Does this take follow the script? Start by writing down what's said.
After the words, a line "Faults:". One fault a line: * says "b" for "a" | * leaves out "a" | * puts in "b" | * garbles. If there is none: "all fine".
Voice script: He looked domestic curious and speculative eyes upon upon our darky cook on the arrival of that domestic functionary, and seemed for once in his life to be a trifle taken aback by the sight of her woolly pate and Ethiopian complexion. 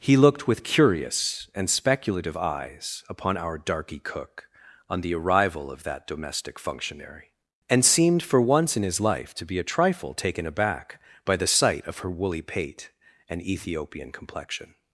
He looked with curious and speculative eyes upon our darky cook on the arrival of that domestic functionary, and seemed for once in his life to be a trifle taken aback by the sight of her woolly pate and Ethiopian complexion.
Faults:
* says "with" for "domestic"
* leaves out "upon"